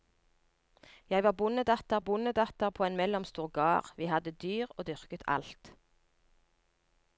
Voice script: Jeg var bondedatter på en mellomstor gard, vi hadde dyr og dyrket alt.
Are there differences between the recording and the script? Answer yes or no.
yes